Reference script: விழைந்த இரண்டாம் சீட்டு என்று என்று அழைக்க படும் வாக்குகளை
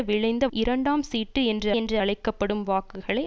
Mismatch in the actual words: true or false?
false